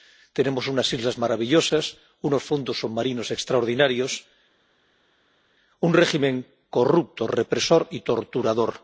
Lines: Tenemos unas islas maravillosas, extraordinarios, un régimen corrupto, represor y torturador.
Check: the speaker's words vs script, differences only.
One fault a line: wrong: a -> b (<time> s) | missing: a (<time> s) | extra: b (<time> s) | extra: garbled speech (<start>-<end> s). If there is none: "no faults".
extra: unos fondos submarinos (2.2 s)